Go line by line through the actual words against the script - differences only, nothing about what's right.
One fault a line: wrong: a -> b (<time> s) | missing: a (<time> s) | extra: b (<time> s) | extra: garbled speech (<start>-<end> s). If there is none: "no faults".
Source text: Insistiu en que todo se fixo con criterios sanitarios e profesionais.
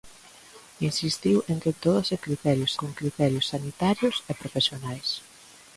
wrong: fixo -> criterios (2.2 s)